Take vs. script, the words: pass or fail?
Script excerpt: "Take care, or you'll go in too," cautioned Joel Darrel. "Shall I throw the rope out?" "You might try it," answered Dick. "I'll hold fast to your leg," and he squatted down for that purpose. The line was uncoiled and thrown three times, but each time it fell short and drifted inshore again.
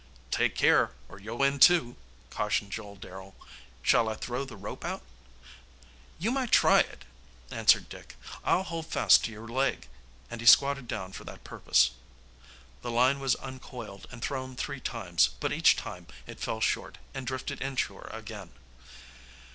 fail